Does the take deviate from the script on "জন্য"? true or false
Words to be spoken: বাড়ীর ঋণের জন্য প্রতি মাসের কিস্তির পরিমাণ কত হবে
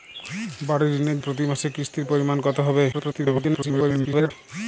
true